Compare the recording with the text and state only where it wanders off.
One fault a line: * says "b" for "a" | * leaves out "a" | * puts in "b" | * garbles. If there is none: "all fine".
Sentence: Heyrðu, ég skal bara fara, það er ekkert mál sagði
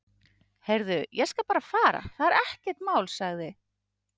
all fine